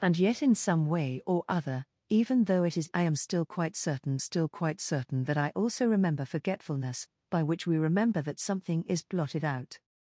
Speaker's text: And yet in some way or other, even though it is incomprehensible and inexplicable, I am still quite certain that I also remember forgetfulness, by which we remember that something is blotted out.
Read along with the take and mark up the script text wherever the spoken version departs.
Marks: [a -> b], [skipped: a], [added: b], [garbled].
And yet in some way or other, even though it is [incomprehensible and inexplicable, I am -> I am still quite certain] still quite certain that I also remember forgetfulness, by which we remember that something is blotted out.